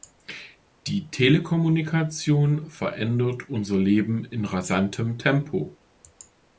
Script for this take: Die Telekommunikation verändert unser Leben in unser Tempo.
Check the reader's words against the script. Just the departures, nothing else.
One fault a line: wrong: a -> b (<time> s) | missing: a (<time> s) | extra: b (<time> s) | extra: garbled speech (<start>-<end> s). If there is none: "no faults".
wrong: unser -> rasantem (4.5 s)